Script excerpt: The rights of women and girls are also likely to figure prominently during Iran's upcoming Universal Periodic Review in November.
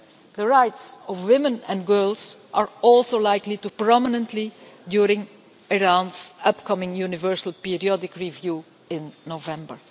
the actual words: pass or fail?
fail